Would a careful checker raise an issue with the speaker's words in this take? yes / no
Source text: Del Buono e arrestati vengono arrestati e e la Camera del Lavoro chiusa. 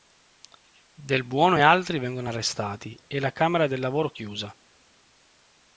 yes